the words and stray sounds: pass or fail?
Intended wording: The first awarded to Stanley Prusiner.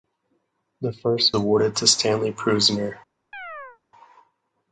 fail